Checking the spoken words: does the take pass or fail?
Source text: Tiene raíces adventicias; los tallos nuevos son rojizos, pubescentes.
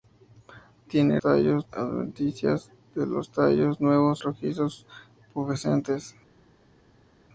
fail